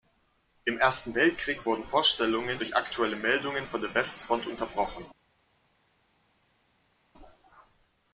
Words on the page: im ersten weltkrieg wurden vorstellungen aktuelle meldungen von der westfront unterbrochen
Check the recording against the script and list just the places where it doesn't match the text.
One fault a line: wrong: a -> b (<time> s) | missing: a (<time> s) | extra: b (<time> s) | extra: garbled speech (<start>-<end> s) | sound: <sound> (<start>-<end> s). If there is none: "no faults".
extra: durch (2.6 s)